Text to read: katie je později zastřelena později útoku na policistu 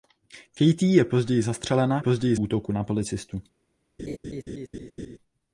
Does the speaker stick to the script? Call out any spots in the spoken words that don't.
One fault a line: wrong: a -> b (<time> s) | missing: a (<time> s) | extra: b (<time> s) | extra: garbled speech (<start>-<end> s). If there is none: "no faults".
no faults